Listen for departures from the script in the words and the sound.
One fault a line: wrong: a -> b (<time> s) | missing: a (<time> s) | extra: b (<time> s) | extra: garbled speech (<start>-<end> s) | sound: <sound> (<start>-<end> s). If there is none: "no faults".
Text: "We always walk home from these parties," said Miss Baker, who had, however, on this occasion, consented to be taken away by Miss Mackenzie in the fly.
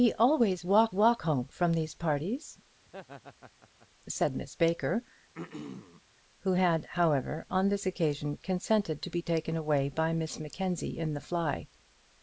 extra: walk (0.9 s)
sound: laugh (2.9-3.9 s)
sound: throat clearing (5.3-6.0 s)